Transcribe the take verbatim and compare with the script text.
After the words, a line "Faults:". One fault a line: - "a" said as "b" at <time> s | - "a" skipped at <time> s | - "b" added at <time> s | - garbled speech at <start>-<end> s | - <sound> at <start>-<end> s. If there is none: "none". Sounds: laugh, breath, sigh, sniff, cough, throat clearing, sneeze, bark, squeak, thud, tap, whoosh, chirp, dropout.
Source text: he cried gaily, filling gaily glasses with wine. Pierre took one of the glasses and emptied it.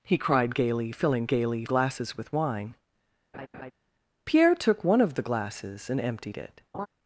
he cried gaily, filling gaily glasses with wine. Pierre took one of the glasses and emptied it.
Faults:
- laugh at 3.3-3.7 s
- laugh at 6.7-6.9 s